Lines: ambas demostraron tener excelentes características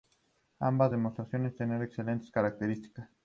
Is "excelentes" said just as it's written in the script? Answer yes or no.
yes